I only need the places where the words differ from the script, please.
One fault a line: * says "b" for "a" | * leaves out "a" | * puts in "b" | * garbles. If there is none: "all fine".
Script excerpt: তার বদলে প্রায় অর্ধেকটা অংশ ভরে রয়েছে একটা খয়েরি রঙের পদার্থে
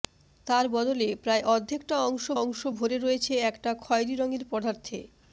* puts in "অংশ"